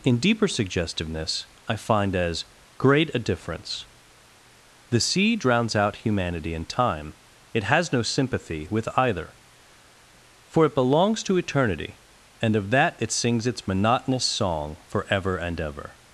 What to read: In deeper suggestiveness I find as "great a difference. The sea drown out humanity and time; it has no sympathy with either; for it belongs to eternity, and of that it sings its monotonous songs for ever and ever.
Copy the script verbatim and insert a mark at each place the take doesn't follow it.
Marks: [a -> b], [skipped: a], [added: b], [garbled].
In deeper suggestiveness I find as "great a difference. The sea [drown -> drowns] out humanity and time; it has no sympathy with either; for it belongs to eternity, and of that it sings its monotonous [songs -> song] for ever and ever.